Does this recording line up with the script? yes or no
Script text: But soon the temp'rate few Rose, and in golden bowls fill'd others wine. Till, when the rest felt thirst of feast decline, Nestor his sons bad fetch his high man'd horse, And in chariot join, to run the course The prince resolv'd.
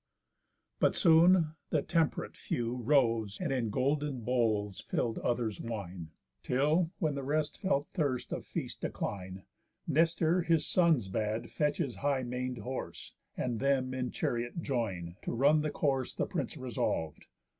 no